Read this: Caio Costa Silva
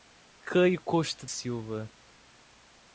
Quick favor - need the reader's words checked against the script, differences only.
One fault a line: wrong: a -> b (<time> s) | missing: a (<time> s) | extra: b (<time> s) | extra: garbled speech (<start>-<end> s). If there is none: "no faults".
no faults